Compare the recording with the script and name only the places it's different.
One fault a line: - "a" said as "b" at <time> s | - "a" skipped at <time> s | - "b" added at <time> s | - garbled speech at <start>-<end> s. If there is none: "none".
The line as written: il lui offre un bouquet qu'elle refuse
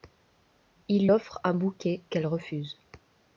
- "lui" skipped at 1.1 s